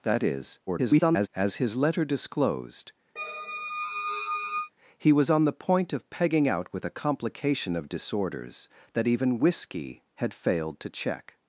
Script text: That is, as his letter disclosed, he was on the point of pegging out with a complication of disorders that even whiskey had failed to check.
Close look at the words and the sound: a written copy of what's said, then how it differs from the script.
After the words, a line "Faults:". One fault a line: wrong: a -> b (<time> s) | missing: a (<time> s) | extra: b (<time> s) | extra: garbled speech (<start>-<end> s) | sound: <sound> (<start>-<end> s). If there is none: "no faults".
That is, [garbled] as his letter disclosed, he was on the point of pegging out with a complication of disorders that even whiskey had failed to check.
Faults:
extra: garbled speech (0.7-1.3 s)
sound: squeak (3.2-4.7 s)